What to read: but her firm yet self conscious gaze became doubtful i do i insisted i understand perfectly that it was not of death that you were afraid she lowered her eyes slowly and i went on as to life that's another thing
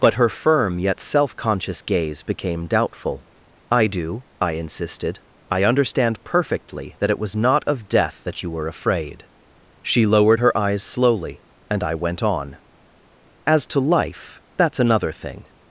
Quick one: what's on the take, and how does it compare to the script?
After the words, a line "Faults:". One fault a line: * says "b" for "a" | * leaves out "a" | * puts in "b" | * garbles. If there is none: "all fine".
but her firm yet self conscious gaze became doubtful i do i insisted i understand perfectly that it was not of death that you were afraid she lowered her eyes slowly and i went on as to life that's another thing
Faults:
all fine